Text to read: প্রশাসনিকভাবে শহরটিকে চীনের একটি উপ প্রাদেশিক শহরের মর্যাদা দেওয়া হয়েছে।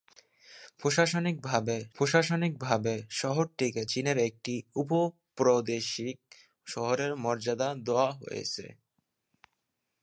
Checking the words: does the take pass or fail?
fail